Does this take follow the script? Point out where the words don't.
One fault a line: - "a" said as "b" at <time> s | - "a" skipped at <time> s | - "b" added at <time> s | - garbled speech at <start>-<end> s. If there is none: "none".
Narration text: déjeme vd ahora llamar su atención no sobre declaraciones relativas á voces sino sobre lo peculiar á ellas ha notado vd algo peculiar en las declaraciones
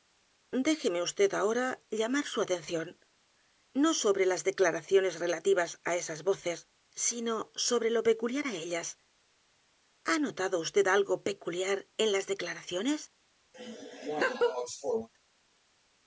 - "las" added at 4.3 s
- "esas" added at 6.0 s